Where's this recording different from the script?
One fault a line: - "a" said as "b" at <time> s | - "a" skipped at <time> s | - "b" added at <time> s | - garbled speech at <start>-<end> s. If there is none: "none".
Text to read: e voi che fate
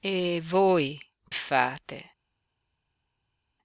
- "che" skipped at 1.0 s